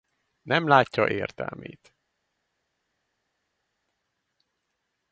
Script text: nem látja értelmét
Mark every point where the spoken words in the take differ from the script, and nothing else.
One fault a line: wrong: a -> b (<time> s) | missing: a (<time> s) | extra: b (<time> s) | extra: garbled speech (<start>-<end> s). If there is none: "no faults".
no faults